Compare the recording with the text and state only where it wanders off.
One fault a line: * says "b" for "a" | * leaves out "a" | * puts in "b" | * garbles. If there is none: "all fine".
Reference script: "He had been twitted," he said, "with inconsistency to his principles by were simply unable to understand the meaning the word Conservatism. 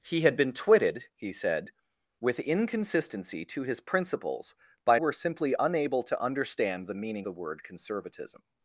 all fine